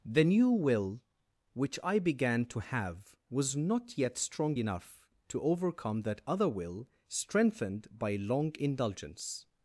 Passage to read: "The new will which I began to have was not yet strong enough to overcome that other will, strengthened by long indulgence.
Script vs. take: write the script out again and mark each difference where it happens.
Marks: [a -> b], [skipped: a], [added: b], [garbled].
"The new will which I began to have was not yet strong enough to overcome that other will, strengthened by long indulgence.